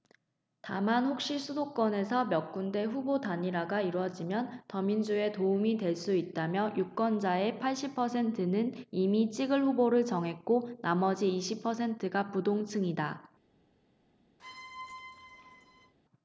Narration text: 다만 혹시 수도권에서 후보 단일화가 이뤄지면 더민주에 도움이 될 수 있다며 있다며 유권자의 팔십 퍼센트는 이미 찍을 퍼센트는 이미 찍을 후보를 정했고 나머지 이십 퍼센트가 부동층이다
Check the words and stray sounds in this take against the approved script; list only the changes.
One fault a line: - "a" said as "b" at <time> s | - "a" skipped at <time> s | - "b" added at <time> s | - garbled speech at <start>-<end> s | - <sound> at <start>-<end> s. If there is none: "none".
- "몇 군데" added at 2.2 s
- "있다며" skipped at 6.7 s
- "퍼센트는 이미 찍을" skipped at 9.6 s
- squeak at 14.4-15.9 s